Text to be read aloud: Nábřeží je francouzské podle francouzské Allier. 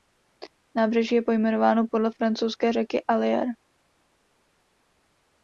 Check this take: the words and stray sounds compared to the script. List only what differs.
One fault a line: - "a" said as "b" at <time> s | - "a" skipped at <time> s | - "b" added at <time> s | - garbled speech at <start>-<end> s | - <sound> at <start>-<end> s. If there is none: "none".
- "francouzské" said as "pojmenováno" at 1.2 s
- "řeky" added at 2.7 s